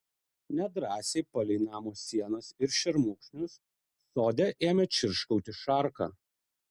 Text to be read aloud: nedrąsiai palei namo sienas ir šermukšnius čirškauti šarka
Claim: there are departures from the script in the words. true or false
true